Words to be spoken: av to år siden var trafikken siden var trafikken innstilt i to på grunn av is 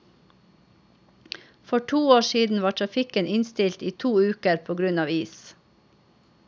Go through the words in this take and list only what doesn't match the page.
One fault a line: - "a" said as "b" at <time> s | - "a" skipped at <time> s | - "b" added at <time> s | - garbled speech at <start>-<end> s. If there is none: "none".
- "av" said as "for" at 1.6 s
- "siden var trafikken" skipped at 3.3 s
- "uker" added at 4.2 s